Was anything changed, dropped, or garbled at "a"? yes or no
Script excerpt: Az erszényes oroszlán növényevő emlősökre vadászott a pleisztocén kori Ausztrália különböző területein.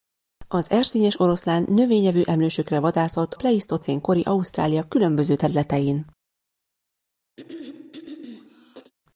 yes